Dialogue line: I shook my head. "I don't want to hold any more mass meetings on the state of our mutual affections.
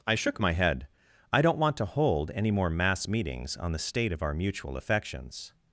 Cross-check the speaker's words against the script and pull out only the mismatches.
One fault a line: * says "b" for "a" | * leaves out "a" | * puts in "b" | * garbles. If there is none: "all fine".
all fine